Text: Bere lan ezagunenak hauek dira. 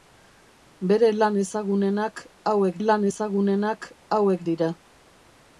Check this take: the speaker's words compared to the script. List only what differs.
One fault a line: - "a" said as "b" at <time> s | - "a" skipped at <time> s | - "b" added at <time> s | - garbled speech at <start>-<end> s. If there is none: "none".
- "lan ezagunenak hauek" added at 2.8 s